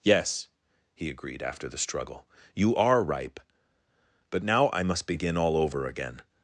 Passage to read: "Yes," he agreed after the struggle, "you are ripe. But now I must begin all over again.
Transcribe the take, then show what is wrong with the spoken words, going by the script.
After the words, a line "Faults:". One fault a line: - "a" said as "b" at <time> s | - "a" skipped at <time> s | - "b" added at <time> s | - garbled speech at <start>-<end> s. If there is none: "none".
"Yes," he agreed after the struggle, "you are ripe. But now I must begin all over again.
Faults:
none